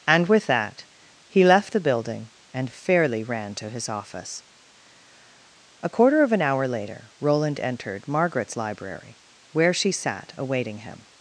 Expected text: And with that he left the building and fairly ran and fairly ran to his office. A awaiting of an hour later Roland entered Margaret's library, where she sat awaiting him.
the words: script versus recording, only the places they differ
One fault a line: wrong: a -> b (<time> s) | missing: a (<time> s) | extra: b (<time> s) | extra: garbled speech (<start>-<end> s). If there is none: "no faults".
missing: and fairly ran (3.5 s)
wrong: awaiting -> quarter (5.9 s)